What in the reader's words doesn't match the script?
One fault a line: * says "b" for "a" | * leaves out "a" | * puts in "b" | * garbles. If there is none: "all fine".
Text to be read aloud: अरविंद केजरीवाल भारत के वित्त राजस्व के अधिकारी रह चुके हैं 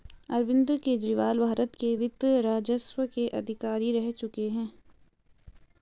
all fine